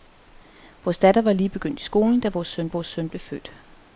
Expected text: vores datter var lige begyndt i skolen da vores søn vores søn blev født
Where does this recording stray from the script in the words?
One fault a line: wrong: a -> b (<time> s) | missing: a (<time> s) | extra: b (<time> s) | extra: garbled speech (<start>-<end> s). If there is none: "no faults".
no faults